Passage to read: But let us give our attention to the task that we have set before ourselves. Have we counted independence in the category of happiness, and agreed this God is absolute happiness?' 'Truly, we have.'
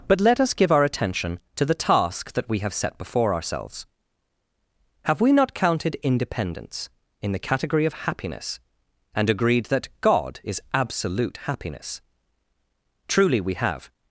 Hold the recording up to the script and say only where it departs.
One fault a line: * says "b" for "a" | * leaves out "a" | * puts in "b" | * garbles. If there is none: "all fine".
* puts in "not"
* says "that" for "this"